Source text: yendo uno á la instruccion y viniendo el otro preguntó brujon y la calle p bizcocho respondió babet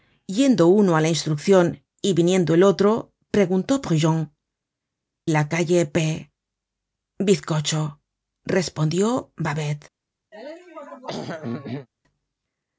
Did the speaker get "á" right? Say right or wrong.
right